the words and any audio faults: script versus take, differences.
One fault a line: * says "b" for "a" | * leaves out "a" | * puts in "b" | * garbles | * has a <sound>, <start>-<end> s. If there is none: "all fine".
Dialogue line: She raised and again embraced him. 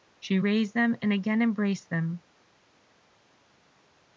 * puts in "them"
* says "them" for "him"